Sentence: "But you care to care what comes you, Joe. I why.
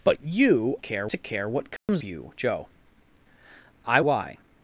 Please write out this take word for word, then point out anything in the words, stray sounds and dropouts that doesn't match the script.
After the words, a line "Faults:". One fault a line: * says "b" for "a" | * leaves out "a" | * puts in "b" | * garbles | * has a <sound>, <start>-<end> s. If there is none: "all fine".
"But you care to care what comes you, Joe. I why.
Faults:
* has a dropout, 1.8-1.9 s